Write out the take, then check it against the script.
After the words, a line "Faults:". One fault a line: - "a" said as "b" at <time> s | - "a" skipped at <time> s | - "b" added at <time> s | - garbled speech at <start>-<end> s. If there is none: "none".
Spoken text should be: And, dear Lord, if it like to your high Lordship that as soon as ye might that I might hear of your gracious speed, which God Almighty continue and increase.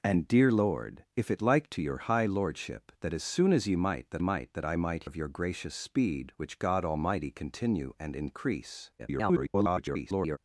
And, dear Lord, if it like to your high Lordship that as soon as ye might that might that I might of your gracious speed, which God Almighty continue and increase. [garbled]
Faults:
- "might that" added at 4.2 s
- "hear" skipped at 5.0 s
- garbled speech at 9.0-10.4 s